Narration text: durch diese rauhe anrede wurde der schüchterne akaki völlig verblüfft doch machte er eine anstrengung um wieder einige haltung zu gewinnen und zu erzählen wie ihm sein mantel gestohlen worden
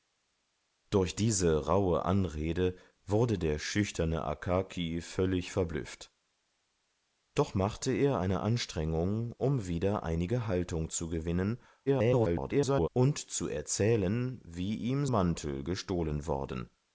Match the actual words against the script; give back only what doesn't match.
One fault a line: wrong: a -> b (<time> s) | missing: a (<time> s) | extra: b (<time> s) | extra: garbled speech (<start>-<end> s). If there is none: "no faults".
extra: garbled speech (11.9-12.9 s)
missing: sein (15.1 s)